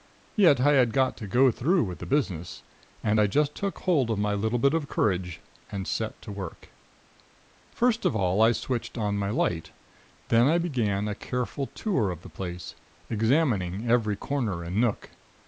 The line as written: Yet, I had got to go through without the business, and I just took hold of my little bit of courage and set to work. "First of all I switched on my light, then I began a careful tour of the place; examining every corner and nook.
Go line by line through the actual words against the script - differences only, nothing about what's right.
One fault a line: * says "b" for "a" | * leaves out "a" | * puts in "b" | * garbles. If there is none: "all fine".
* says "with" for "without"